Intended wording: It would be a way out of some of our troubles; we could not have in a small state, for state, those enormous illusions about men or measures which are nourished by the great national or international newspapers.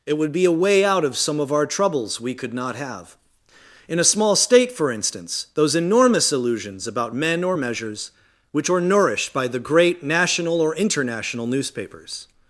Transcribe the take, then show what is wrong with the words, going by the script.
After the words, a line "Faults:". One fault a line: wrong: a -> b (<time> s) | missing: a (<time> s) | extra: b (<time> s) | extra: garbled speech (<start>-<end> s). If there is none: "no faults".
It would be a way out of some of our troubles; we could not have in a small state, for instance, those enormous illusions about men or measures which are nourished by the great national or international newspapers.
Faults:
wrong: state -> instance (4.9 s)